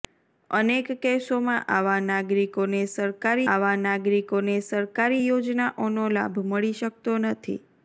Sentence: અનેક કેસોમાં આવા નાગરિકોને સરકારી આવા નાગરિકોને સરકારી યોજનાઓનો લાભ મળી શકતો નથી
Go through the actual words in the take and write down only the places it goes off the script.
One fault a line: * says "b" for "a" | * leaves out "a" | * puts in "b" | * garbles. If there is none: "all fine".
all fine